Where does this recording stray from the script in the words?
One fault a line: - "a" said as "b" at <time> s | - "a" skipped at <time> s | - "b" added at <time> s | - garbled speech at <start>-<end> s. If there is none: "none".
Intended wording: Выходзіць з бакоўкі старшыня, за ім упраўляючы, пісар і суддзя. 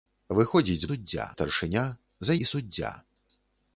- "бакоўкі" said as "суддзя" at 0.9 s
- "ім упраўляючы пісар" skipped at 2.4 s